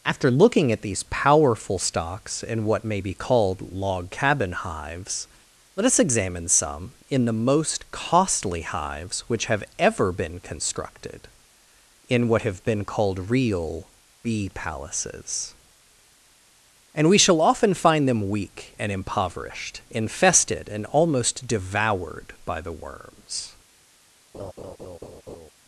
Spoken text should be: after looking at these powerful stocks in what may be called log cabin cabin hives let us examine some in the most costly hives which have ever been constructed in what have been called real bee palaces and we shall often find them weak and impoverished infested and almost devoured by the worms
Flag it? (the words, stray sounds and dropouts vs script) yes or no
yes